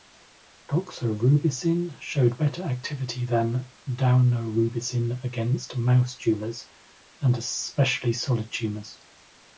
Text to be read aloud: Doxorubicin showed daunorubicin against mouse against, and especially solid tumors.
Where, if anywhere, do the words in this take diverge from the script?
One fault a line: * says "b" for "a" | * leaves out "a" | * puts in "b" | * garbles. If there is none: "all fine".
* puts in "better activity than"
* says "tumors" for "against"